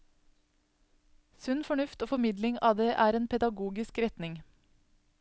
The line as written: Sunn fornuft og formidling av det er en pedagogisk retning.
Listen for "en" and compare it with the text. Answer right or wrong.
right